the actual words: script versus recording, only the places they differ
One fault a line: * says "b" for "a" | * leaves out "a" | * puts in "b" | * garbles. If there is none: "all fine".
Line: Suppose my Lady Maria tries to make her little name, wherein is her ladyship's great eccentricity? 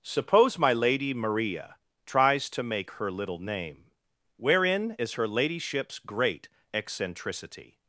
all fine